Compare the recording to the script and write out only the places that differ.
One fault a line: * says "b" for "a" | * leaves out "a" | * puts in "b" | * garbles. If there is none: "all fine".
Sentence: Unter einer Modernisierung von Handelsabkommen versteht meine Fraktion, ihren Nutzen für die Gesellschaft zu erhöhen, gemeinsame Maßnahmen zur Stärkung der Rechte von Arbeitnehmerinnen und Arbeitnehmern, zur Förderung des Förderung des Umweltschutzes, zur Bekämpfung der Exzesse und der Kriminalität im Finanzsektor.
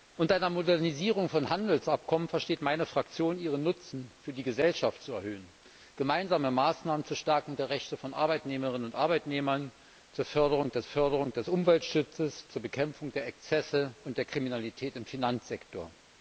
all fine